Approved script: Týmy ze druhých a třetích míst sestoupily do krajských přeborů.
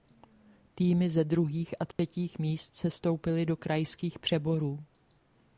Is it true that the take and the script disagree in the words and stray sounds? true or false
true